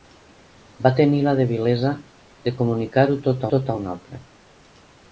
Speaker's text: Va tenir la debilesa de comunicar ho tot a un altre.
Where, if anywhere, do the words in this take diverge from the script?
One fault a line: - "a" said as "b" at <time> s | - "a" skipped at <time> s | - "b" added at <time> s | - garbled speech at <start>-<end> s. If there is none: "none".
- "tot" added at 3.5 s